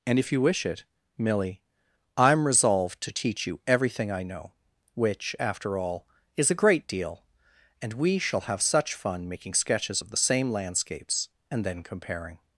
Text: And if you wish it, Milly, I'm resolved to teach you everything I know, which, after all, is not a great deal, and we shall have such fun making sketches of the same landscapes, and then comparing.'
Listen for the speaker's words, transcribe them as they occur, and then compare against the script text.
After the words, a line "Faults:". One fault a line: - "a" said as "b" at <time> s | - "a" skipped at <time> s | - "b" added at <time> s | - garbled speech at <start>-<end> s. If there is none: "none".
And if you wish it, Milly, I'm resolved to teach you everything I know, which, after all, is a great deal, and we shall have such fun making sketches of the same landscapes, and then comparing.'
Faults:
- "not" skipped at 6.5 s